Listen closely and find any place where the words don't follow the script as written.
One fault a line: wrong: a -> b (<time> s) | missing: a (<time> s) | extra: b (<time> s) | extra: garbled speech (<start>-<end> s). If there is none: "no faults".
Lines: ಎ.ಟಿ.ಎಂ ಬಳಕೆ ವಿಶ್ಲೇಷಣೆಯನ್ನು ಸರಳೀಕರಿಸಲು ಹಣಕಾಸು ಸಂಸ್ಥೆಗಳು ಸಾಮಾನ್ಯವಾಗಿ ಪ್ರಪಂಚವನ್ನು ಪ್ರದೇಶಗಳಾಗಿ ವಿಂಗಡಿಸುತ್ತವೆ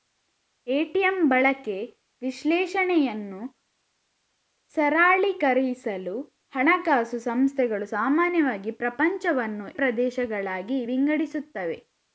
no faults